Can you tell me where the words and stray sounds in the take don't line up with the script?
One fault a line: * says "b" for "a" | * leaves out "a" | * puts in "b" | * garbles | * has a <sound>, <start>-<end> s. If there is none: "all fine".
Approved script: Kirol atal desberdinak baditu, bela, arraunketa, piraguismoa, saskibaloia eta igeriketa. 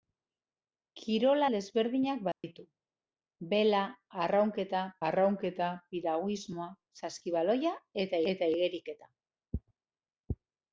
* leaves out "atal"
* has a dropout, 2.3-2.4 s
* puts in "arraunketa"
* puts in "eta"